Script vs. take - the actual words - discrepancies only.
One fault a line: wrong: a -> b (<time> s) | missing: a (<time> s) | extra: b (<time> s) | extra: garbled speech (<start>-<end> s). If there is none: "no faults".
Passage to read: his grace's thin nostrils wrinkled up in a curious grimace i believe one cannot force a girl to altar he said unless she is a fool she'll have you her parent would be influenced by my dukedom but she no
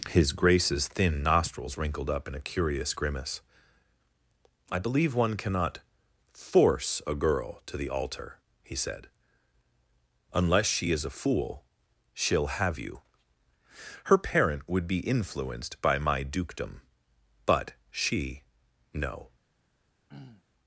extra: the (7.8 s)